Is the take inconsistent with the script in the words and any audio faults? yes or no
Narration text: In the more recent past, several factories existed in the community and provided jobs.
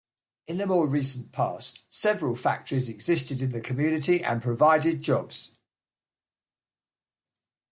no